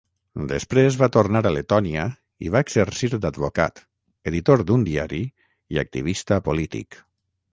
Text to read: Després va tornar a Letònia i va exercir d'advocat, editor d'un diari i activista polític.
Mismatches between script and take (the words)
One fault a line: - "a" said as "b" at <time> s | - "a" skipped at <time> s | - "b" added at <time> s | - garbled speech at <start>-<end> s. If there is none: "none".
none